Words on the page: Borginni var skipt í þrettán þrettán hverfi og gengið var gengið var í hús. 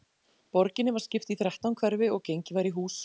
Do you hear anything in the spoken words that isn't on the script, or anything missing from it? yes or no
yes